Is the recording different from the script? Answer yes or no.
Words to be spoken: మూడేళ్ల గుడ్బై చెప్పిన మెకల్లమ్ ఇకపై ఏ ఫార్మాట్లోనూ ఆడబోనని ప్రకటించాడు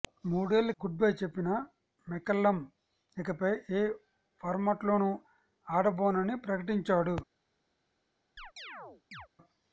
no